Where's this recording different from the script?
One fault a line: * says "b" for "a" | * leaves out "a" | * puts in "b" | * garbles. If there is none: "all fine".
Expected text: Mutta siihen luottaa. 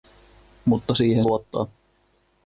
all fine